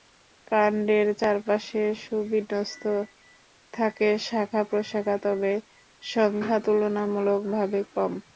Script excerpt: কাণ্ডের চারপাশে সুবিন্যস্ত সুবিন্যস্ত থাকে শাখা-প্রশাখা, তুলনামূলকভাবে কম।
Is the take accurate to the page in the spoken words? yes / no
no